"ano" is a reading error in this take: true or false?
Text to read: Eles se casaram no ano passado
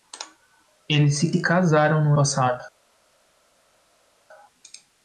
true